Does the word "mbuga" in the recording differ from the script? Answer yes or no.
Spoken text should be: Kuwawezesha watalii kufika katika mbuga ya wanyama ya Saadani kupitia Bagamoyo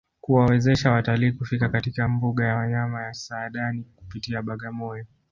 no